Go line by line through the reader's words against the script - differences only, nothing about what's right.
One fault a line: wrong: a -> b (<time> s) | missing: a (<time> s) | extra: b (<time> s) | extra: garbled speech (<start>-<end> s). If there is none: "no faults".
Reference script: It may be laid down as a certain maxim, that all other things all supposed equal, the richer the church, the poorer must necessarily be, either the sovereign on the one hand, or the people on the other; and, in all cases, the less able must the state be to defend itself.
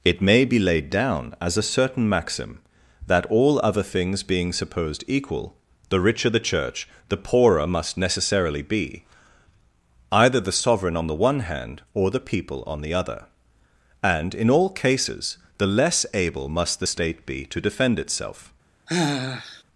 wrong: all -> being (4.2 s)